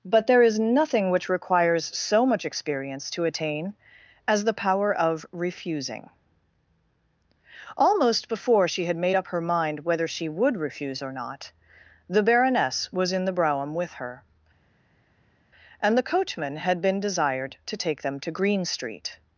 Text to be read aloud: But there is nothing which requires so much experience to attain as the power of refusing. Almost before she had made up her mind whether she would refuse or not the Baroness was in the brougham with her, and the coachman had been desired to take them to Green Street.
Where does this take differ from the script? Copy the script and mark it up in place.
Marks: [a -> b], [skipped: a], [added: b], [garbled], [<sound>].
But there is nothing which requires so much experience to attain as the power of refusing. Almost before she had made up her mind whether she would refuse or not the Baroness was in the brougham with her, and the coachman had been desired to take them to Green Street.